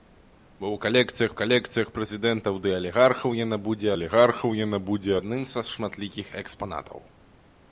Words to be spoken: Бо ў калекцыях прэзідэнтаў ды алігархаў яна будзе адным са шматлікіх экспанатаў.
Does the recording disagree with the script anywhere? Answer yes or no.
yes